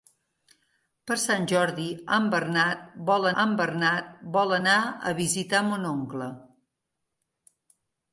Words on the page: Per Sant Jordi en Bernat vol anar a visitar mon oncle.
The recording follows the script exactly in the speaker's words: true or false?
false